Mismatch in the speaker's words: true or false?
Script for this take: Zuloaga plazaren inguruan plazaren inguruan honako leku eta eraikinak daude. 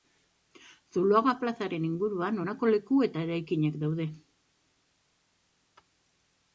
true